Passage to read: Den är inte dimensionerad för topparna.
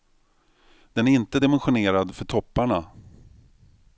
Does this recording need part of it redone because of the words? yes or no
no